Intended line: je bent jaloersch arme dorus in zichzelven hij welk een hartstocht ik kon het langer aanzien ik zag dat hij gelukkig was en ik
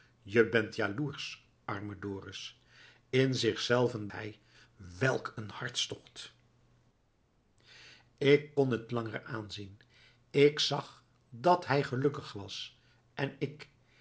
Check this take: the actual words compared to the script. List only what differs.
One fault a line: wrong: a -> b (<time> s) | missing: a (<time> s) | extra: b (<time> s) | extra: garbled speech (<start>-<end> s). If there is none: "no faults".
no faults